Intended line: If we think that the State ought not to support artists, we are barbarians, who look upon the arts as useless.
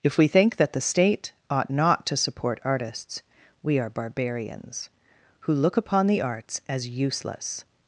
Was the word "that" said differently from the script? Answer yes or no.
no